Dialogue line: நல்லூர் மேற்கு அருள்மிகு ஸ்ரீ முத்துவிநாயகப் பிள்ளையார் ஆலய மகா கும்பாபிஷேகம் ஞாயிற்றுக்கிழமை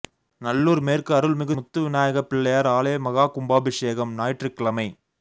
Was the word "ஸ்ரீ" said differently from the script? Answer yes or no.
yes